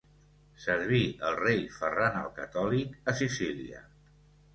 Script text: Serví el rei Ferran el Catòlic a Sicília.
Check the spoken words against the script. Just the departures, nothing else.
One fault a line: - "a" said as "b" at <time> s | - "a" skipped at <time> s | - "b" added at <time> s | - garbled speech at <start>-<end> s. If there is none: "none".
none